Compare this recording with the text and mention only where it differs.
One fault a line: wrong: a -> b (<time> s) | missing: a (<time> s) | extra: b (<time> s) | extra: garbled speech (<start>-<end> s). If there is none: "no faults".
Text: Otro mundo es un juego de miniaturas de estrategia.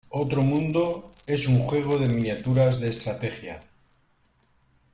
no faults